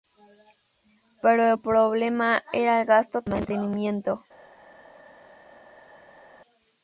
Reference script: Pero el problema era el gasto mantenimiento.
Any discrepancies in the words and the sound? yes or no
no